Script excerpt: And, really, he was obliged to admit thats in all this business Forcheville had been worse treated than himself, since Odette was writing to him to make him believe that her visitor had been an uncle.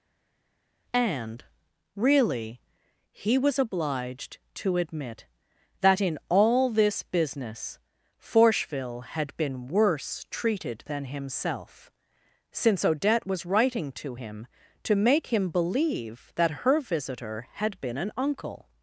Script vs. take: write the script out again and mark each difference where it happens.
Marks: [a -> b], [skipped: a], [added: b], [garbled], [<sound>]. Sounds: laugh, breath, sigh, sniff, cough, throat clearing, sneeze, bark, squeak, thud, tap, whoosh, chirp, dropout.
And, really, he was obliged to admit [thats -> that] in all this business Forcheville had been worse treated than himself, since Odette was writing to him to make him believe that her visitor had been an uncle.